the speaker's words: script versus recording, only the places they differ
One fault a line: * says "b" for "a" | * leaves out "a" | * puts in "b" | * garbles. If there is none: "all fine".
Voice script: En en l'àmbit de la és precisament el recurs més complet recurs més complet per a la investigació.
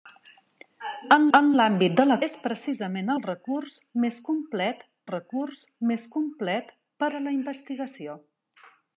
all fine